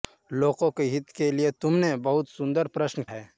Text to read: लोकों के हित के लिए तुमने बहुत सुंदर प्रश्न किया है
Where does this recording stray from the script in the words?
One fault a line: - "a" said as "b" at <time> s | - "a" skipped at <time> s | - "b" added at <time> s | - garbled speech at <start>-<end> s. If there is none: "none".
- "किया" skipped at 3.0 s